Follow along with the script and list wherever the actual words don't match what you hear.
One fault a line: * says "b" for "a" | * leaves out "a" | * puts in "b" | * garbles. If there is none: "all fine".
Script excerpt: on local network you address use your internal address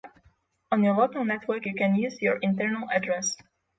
* puts in "your"
* says "can" for "address"